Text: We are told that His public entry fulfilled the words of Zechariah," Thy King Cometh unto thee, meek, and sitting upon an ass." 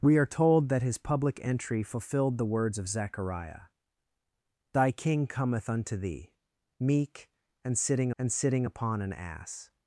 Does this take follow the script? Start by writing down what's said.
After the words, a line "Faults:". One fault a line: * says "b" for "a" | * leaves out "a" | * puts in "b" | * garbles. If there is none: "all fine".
We are told that His public entry fulfilled the words of Zechariah," Thy King Cometh unto thee, meek, and sitting and sitting upon an ass."
Faults:
* puts in "and sitting"